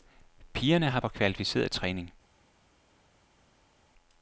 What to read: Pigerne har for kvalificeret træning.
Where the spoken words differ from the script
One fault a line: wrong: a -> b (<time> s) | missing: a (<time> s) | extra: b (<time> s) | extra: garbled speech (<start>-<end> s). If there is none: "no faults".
no faults